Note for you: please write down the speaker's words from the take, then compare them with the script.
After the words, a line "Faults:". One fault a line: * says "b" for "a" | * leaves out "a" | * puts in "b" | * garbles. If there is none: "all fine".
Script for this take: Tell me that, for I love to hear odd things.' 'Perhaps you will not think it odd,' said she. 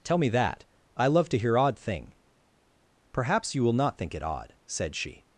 Tell me that, I love to hear odd thing.' 'Perhaps you will not think it odd,' said she.
Faults:
* leaves out "for"
* says "thing" for "things"